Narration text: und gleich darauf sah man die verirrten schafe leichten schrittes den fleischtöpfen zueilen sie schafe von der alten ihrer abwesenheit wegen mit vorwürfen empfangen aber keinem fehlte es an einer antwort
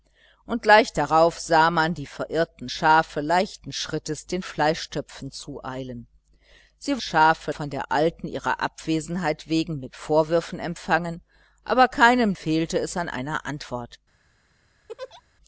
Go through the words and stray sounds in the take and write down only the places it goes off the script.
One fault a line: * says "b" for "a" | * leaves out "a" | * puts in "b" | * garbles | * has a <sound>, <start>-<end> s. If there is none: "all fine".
* has a laugh, 14.9-15.2 s